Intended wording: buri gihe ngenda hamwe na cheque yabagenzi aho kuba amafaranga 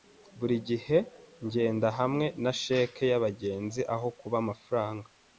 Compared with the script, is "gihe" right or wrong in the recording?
right